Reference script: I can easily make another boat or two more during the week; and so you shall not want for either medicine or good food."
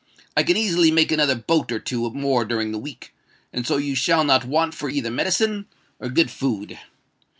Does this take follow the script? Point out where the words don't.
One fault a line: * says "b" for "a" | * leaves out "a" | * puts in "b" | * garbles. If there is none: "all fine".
all fine